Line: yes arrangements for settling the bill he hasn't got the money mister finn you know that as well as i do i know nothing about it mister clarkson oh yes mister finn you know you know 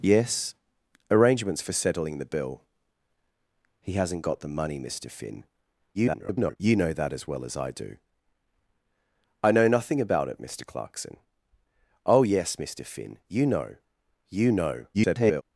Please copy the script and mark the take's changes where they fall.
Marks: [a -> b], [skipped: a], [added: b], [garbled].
yes arrangements for settling the bill he hasn't got the money mister finn [garbled] you know that as well as i do i know nothing about it mister clarkson oh yes mister finn you know you know [garbled]